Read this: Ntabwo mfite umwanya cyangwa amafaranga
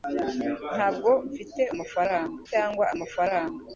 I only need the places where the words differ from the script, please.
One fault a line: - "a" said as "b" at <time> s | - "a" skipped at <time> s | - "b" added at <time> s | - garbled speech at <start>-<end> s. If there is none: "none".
- "umwanya" said as "amafaranga" at 1.7 s